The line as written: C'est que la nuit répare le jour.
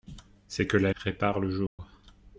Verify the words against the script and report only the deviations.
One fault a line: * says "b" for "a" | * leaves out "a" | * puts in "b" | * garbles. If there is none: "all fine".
* leaves out "nuit"